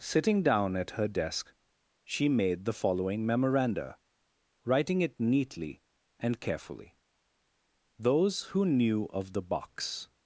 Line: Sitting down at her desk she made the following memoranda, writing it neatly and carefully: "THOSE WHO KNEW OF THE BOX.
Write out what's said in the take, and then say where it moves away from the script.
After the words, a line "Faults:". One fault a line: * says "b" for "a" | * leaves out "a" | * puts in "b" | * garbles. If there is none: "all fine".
Sitting down at her desk she made the following memoranda, writing it neatly and carefully: "THOSE WHO KNEW OF THE BOX.
Faults:
all fine